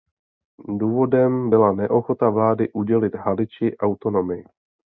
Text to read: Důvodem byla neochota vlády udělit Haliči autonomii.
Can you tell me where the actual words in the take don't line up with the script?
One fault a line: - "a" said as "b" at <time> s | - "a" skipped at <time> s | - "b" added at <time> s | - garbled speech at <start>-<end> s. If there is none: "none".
none